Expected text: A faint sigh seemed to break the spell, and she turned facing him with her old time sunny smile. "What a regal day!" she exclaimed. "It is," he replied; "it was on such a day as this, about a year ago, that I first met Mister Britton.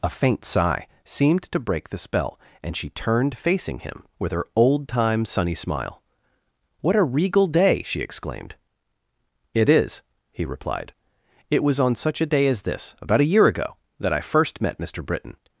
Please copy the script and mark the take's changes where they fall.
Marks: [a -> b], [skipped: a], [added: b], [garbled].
A faint sigh seemed to break the spell, and she turned facing him with her old time sunny smile. "What a regal day!" she exclaimed. "It is," he replied; "it was on such a day as this, about a year ago, that I first met Mister Britton.